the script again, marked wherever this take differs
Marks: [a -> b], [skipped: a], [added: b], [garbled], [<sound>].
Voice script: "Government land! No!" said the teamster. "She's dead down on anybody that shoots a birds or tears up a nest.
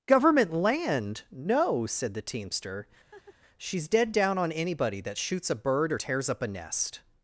"Government land! No!" said the teamster. [laugh] "She's dead down on anybody that shoots a [birds -> bird] or tears up a nest.